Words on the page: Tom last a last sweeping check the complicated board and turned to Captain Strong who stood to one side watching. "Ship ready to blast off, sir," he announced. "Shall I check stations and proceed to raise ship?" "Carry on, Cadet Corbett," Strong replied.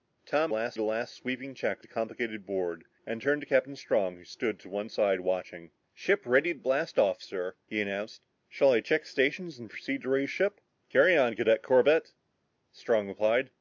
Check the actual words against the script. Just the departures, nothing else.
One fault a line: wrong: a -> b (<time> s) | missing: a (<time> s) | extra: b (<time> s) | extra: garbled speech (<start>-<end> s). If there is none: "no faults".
no faults